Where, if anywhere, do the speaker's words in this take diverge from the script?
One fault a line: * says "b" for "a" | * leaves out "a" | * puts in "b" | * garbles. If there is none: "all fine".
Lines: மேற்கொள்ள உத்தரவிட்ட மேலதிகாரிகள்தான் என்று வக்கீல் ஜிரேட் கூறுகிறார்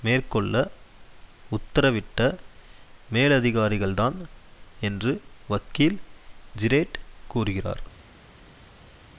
all fine